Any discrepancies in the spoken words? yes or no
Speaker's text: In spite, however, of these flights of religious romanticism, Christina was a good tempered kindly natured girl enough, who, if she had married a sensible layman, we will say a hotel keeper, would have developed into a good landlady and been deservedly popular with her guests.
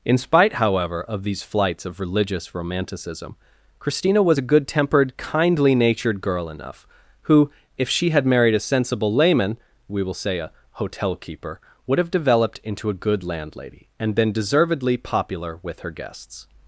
no